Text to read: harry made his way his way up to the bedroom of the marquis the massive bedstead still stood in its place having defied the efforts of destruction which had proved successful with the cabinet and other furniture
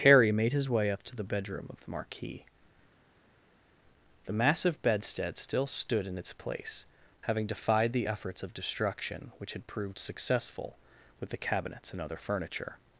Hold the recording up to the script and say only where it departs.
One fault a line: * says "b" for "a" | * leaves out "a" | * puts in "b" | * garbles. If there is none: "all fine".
* leaves out "his way"
* says "cabinets" for "cabinet"